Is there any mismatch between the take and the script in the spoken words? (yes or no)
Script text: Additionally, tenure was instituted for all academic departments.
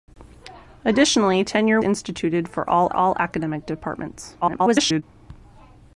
yes